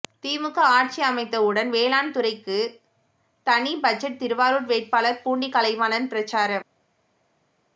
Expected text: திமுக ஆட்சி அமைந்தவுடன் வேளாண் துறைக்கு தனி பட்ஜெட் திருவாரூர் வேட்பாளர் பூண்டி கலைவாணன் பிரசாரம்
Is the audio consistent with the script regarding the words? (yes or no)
yes